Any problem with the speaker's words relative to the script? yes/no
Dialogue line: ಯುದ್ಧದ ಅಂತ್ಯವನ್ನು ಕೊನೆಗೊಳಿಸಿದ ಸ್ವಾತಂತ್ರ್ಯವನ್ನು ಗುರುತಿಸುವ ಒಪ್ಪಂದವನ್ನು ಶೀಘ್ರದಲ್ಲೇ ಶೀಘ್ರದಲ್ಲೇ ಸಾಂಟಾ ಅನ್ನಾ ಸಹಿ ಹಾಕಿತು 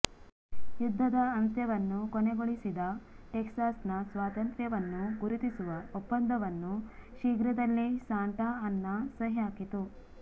yes